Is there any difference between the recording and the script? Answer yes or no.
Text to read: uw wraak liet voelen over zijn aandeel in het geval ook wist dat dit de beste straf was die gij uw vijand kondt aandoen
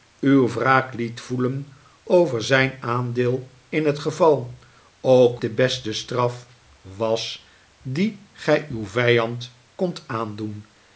yes